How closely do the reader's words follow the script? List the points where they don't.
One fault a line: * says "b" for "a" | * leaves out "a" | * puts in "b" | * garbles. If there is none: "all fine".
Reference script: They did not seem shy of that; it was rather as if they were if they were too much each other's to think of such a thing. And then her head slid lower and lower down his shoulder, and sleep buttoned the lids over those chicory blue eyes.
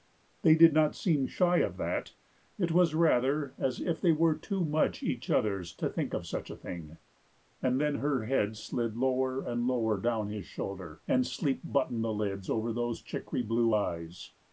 * leaves out "if they were"